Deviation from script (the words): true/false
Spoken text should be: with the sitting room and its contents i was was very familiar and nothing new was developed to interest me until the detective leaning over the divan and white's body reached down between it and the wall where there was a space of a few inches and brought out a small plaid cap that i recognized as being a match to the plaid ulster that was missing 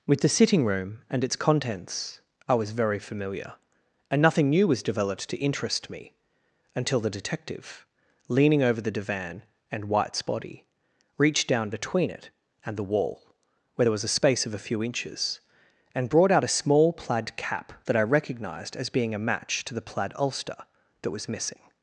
true